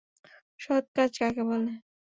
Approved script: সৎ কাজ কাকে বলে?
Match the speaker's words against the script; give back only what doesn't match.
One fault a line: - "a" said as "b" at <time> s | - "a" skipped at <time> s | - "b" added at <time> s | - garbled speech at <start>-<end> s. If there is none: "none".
none